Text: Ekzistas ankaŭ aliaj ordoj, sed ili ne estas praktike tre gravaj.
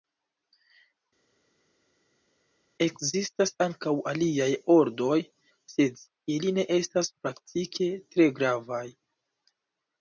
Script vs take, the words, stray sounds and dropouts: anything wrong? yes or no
no